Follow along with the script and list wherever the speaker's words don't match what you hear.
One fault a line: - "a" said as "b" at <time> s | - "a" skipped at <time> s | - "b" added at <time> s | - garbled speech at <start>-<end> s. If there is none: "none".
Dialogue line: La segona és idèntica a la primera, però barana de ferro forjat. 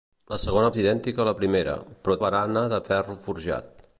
none